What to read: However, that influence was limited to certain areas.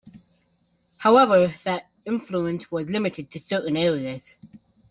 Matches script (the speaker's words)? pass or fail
pass